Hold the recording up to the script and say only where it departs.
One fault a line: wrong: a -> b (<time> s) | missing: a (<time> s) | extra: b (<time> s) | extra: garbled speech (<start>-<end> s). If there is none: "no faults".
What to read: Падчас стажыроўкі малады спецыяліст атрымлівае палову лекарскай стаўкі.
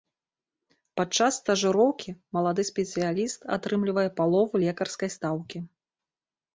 no faults